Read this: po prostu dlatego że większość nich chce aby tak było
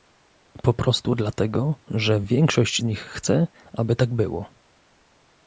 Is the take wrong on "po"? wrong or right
right